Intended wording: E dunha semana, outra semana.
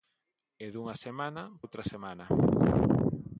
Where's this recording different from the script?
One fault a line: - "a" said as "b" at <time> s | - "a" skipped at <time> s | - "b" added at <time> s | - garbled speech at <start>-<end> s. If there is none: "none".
none